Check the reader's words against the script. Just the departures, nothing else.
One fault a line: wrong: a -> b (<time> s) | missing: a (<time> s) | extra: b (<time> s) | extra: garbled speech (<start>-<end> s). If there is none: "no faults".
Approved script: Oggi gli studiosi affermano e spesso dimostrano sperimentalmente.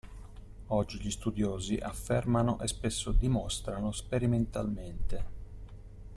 no faults